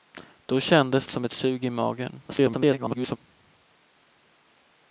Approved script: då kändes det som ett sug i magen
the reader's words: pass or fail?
fail